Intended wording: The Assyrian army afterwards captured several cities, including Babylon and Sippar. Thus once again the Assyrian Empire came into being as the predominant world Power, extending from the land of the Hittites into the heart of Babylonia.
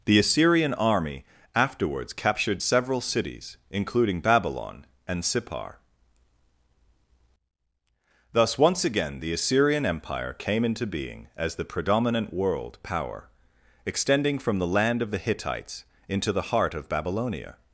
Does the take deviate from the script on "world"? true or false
false